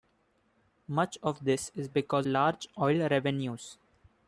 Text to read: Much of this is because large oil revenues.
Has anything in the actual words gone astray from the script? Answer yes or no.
no